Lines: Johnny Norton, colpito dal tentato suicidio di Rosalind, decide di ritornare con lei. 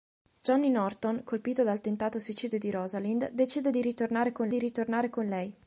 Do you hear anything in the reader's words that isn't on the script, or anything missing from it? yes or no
yes